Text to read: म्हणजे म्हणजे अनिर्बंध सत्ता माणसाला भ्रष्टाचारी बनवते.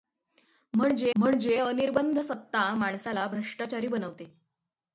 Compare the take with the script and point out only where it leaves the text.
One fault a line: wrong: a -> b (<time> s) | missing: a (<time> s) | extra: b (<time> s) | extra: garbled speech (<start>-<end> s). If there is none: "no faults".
no faults